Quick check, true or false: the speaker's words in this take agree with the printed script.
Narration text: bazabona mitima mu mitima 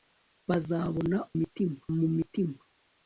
true